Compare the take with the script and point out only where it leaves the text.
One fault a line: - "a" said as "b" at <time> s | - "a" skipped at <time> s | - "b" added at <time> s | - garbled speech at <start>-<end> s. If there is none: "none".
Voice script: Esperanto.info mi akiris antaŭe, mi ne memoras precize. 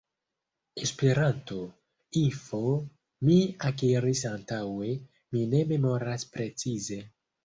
none